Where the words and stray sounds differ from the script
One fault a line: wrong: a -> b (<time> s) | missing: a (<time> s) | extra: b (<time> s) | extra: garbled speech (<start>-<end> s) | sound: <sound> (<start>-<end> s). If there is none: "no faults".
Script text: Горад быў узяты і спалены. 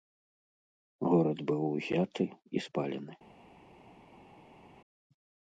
no faults